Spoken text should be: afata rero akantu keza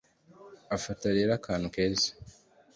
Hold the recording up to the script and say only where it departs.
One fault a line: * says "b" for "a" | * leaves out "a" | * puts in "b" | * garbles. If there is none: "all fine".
all fine